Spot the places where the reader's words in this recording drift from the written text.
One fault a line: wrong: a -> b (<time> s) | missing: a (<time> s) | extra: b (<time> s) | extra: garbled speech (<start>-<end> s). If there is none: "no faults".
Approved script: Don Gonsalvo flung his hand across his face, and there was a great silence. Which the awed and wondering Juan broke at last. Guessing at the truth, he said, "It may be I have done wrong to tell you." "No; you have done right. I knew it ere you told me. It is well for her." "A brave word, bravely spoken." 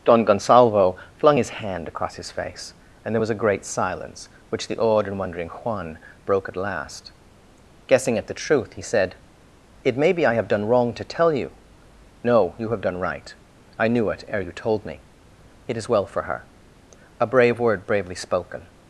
no faults